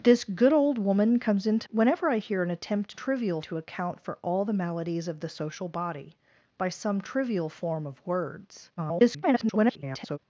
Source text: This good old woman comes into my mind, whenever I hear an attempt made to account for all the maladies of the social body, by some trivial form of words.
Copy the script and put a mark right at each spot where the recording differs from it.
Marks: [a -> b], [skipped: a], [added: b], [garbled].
This good old woman comes into [skipped: my mind,] whenever I hear an attempt [made -> trivial] to account for all the maladies of the social body, by some trivial form of words. [garbled]